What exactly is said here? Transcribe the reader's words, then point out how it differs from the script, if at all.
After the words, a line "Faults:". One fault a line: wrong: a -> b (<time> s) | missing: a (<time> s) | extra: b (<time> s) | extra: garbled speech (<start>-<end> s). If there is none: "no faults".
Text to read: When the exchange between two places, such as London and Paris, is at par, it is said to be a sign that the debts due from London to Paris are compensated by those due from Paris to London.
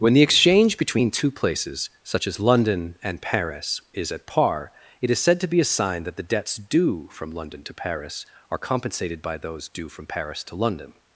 When the exchange between two places, such as London and Paris, is at par, it is said to be a sign that the debts due from London to Paris are compensated by those due from Paris to London.
Faults:
no faults